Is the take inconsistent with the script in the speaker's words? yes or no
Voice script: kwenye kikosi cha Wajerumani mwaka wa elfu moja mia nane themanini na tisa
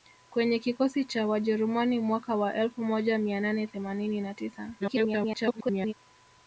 yes